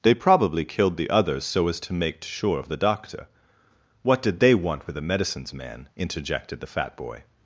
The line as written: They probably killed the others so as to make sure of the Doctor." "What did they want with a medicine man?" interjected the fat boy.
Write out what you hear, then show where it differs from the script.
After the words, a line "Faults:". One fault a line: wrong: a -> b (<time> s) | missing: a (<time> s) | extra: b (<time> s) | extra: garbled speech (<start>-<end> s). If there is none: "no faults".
They probably killed the others so as to make sure of the Doctor." "What did they want with a medicines man?" interjected the fat boy.
Faults:
wrong: medicine -> medicines (5.0 s)